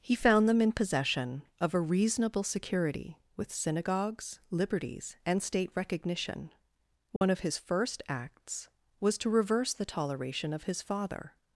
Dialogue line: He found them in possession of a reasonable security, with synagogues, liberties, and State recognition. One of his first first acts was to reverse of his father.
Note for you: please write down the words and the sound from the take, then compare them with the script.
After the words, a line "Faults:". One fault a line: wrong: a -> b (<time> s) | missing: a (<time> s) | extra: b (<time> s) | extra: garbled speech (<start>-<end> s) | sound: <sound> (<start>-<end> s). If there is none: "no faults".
He found them in possession of a reasonable security, with synagogues, liberties, and State recognition. One of his first acts was to reverse the toleration of his father.
Faults:
sound: dropout (7.2-7.2 s)
missing: first (8.0 s)
extra: the toleration (9.7 s)